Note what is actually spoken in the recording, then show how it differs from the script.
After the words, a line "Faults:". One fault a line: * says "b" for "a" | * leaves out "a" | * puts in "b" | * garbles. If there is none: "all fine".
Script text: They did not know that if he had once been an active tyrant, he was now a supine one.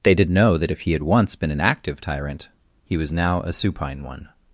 They did know that if he had once been an active tyrant, he was now a supine one.
Faults:
* leaves out "not"